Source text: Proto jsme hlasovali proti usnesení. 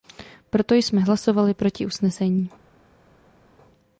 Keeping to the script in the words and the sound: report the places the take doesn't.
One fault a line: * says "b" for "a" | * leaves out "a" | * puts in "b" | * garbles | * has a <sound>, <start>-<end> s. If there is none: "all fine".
all fine